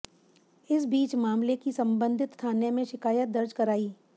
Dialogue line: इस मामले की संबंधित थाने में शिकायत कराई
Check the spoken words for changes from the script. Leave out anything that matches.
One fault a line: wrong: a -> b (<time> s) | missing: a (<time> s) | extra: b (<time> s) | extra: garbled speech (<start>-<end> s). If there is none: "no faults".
extra: बीच (0.8 s)
extra: दर्ज (3.3 s)